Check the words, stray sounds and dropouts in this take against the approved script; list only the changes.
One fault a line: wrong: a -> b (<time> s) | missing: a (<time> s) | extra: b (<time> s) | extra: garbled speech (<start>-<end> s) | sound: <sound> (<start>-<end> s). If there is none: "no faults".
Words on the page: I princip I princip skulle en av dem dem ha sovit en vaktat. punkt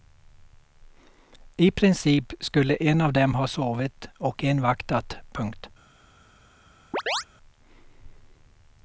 missing: I princip (2.3 s)
missing: dem (3.4 s)
extra: och (4.2 s)
sound: chirp (6.9-7.2 s)